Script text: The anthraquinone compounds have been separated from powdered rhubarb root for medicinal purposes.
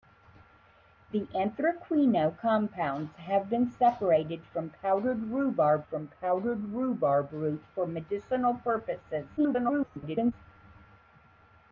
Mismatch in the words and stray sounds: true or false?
true